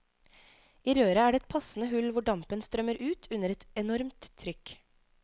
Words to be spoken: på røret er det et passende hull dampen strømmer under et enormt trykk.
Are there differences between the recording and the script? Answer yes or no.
yes